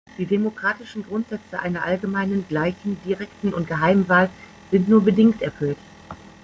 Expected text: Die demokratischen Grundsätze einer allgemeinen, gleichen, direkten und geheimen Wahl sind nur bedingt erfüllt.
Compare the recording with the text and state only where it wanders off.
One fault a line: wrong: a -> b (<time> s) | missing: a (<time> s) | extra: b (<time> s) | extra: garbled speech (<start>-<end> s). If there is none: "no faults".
no faults